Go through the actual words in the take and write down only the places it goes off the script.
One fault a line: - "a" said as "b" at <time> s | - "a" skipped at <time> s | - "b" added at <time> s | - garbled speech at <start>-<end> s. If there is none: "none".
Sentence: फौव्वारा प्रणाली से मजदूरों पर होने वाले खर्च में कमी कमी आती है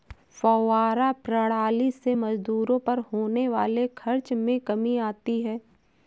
- "कमी" skipped at 5.0 s